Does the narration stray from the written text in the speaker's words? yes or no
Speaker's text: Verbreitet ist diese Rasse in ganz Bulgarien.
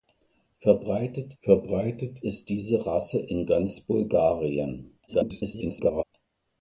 yes